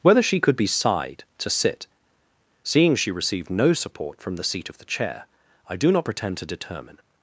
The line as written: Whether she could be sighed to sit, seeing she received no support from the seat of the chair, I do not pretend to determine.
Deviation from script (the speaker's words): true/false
false